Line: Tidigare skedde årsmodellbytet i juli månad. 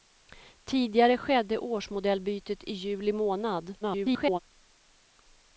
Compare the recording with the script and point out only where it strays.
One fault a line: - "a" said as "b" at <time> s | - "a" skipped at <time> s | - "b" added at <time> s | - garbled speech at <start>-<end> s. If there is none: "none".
- garbled speech at 3.8-4.4 s